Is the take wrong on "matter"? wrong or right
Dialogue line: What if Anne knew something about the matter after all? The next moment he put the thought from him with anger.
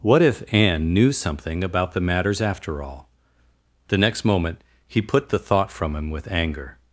wrong